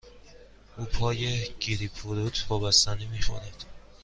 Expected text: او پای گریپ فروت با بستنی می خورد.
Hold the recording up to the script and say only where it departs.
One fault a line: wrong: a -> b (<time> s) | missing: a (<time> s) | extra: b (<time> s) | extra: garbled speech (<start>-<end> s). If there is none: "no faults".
no faults